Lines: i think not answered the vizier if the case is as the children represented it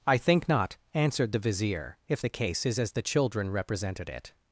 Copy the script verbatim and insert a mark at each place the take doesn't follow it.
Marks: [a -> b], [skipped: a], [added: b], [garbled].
i think not answered the vizier if the case is as the children represented it